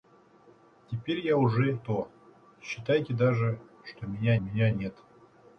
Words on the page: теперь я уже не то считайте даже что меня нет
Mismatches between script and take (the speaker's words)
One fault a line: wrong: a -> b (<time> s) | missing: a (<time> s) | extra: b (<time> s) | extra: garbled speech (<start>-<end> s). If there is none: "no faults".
missing: не (1.8 s)
extra: меня (4.4 s)